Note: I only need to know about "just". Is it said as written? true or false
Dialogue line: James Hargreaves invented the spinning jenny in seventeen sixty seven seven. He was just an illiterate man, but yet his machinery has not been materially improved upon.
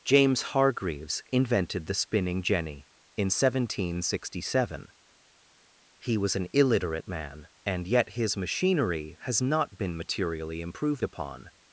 false